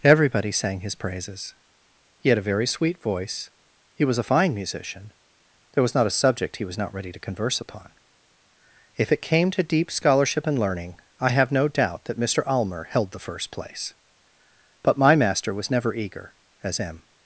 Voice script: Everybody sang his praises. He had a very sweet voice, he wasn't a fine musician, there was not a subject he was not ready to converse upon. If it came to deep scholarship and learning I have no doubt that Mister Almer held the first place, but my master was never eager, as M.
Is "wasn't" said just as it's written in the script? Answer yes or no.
no